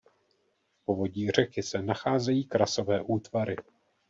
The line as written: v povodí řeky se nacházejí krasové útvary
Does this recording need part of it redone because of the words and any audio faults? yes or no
no